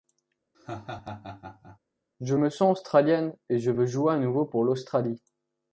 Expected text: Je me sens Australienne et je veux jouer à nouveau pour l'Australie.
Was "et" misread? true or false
false